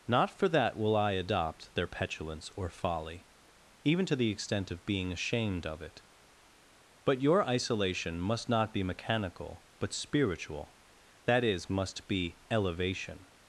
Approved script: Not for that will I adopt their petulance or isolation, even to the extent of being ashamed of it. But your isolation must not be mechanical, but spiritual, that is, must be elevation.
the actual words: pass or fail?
fail